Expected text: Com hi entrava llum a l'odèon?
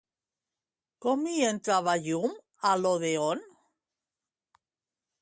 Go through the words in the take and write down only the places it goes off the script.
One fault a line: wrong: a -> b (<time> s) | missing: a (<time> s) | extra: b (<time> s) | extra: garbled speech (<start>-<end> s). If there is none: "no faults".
no faults